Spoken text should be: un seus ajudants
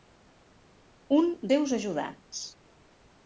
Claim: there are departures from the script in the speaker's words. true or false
false